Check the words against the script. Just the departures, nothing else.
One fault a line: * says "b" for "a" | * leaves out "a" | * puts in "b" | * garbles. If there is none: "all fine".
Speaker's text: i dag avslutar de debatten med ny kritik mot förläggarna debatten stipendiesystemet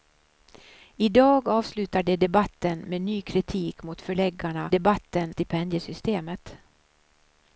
all fine